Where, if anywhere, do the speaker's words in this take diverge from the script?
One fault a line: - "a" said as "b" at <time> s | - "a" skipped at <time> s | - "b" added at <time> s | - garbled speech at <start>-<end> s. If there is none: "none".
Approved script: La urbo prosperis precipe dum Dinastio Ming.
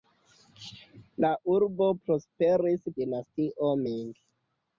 - "precipe dum" skipped at 2.9 s